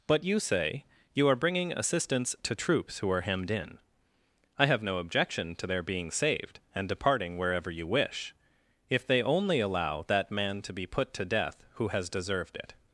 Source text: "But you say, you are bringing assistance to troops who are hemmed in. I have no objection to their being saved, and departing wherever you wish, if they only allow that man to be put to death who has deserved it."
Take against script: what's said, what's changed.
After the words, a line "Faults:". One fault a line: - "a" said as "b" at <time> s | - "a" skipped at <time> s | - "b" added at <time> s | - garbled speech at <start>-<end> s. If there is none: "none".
"But you say, you are bringing assistance to troops who are hemmed in. I have no objection to their being saved, and departing wherever you wish, if they only allow that man to be put to death who has deserved it."
Faults:
none